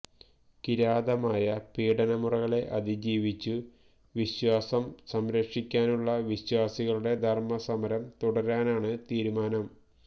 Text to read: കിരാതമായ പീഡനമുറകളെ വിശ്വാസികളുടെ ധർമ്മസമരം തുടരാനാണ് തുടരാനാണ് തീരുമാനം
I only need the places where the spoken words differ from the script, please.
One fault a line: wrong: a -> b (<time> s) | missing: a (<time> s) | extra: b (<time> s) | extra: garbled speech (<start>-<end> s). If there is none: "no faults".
extra: അതിജീവിച്ചു വിശ്വാസം സംരക്ഷിക്കാനുള്ള (2.8 s)
missing: തുടരാനാണ് (8.9 s)